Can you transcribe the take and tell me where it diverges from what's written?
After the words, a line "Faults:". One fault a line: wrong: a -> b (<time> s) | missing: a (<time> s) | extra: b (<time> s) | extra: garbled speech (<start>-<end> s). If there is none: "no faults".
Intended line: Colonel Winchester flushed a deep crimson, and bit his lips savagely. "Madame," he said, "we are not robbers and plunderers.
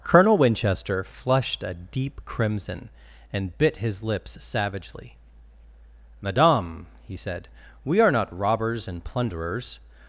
Colonel Winchester flushed a deep crimson, and bit his lips savagely. "Madame," he said, "we are not robbers and plunderers.
Faults:
no faults